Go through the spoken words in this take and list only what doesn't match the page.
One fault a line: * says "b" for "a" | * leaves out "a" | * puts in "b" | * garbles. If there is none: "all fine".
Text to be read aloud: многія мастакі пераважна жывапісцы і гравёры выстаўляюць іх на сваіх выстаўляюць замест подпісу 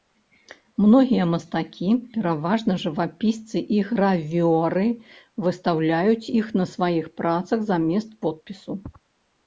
* says "працах" for "выстаўляюць"